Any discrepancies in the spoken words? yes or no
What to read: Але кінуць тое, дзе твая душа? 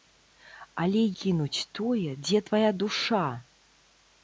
no